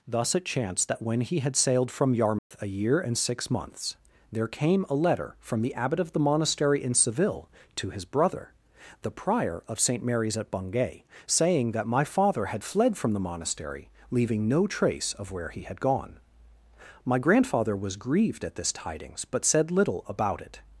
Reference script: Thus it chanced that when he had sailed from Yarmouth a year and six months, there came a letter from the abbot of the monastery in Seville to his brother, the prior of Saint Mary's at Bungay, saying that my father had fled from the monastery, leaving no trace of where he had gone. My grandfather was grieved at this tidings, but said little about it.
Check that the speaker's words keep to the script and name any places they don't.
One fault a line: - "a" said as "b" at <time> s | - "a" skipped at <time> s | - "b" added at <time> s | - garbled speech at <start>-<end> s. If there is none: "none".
none